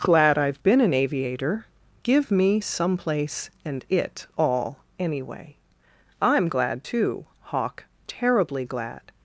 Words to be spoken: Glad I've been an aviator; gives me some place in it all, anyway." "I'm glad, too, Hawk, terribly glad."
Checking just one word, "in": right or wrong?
wrong